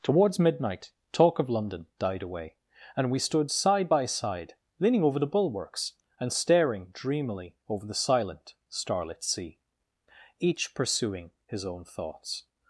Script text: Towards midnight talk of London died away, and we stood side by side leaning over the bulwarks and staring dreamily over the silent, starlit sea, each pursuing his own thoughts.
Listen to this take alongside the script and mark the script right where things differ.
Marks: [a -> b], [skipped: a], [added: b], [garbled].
Towards midnight talk of London died away, and we stood side by side leaning over the bulwarks and staring dreamily over the silent, starlit sea, each pursuing his own thoughts.